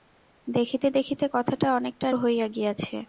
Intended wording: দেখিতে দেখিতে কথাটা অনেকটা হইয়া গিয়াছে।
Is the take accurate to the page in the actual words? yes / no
yes